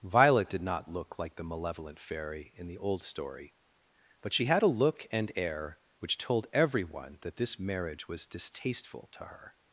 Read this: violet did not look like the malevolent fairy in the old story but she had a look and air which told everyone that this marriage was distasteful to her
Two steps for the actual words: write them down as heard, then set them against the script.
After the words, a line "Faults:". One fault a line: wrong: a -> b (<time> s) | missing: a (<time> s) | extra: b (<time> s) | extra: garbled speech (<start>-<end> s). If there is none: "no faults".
violet did not look like the malevolent fairy in the old story but she had a look and air which told everyone that this marriage was distasteful to her
Faults:
no faults